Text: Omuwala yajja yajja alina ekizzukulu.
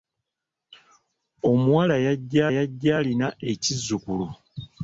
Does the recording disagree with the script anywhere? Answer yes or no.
no